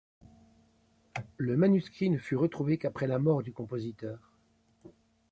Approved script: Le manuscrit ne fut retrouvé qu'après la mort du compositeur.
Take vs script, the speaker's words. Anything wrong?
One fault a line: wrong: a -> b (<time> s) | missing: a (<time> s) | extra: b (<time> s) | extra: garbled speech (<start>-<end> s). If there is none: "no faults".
no faults